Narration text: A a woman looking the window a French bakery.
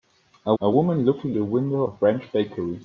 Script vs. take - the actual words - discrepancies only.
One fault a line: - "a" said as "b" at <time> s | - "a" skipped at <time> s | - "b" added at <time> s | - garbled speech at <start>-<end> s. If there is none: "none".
none